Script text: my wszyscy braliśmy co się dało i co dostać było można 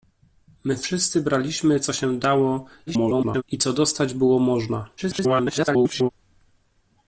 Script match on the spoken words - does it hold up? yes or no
no